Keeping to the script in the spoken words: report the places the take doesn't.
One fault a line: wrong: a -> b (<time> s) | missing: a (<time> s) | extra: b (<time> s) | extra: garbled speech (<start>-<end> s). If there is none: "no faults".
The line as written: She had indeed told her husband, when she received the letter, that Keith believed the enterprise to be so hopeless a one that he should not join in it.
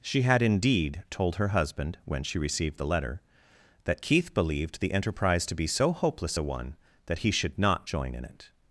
no faults